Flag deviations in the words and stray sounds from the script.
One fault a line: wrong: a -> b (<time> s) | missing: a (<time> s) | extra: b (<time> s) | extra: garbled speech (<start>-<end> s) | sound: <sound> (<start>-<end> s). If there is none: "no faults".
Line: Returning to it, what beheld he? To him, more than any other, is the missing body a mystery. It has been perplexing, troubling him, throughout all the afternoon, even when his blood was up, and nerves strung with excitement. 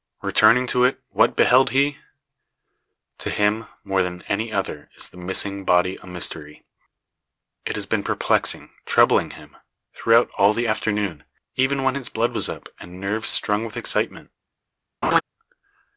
sound: laugh (15.0-15.2 s)